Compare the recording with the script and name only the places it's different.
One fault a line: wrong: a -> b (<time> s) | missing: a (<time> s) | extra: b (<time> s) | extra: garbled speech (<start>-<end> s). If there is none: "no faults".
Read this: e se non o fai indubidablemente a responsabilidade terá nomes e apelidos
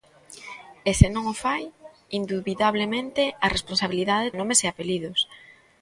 missing: terá (4.3 s)